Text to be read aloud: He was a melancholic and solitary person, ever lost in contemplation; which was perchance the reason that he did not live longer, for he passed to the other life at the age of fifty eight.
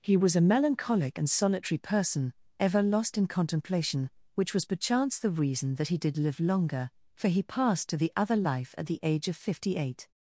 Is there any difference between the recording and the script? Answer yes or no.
yes